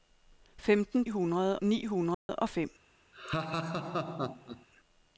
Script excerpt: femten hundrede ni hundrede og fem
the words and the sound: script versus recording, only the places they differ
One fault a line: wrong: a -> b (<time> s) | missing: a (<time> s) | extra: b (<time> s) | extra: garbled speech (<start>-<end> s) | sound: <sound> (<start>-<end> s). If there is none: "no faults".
sound: dropout (2.1-2.3 s)
sound: laugh (3.1-4.7 s)